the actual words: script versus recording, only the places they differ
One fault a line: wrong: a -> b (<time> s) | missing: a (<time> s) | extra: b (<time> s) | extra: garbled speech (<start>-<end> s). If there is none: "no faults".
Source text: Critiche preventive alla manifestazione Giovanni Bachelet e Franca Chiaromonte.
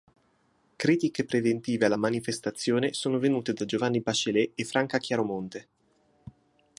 extra: sono venute da (2.9 s)